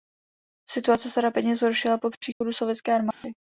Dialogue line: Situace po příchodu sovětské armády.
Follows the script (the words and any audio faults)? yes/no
no